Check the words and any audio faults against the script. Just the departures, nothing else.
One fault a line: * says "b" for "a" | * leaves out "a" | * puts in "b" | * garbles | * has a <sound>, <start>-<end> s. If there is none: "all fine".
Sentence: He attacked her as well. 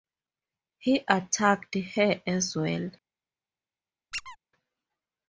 * has a squeak, 4.1-4.4 s